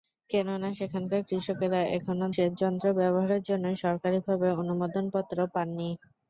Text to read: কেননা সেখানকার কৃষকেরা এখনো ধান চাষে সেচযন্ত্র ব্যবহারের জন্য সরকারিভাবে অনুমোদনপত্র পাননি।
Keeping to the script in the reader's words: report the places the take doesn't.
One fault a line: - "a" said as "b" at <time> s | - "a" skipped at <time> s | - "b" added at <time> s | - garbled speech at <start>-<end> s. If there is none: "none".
- "ধান চাষে" skipped at 2.2 s